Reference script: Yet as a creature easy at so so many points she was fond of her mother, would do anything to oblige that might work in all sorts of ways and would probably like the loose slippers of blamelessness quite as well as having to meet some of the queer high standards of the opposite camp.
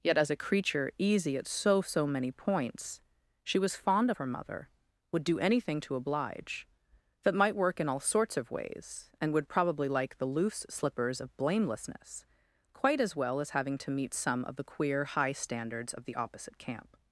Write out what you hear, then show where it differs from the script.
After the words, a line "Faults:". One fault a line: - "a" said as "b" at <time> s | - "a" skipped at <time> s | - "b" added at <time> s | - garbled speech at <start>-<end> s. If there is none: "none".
Yet as a creature easy at so so many points she was fond of her mother, would do anything to oblige that might work in all sorts of ways and would probably like the loose slippers of blamelessness quite as well as having to meet some of the queer high standards of the opposite camp.
Faults:
none